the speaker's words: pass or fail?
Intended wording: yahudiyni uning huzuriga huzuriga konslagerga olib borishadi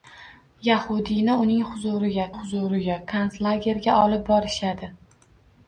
pass